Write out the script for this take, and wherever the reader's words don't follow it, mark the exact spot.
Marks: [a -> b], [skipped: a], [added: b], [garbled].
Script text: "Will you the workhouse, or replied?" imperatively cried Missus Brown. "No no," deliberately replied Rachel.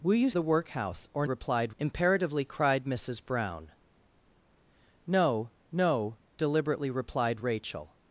"Will you the workhouse, or replied?" imperatively cried Missus Brown. "No no," deliberately replied Rachel.